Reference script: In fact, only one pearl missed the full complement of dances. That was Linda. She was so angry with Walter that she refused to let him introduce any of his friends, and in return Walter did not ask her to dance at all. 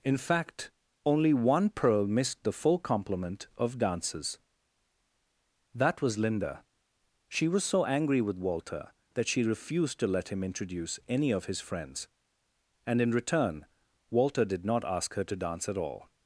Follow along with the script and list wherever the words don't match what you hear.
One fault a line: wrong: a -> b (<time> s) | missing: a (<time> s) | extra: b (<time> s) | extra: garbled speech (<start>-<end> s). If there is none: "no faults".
no faults